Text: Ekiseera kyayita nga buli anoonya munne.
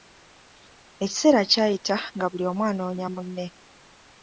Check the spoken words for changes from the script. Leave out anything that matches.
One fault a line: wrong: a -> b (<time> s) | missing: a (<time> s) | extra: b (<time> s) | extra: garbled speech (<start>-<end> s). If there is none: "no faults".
extra: omu (2.5 s)